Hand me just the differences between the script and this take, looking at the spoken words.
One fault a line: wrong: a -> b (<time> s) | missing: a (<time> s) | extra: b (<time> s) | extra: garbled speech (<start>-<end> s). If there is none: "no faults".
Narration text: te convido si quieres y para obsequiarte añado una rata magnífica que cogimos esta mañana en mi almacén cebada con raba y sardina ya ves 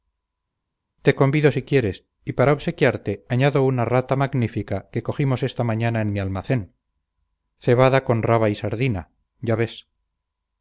no faults